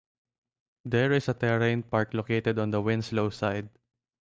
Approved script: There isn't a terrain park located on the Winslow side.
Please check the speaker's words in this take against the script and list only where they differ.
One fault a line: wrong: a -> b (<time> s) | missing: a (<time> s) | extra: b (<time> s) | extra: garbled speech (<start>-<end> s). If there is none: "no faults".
wrong: isn't -> is (1.1 s)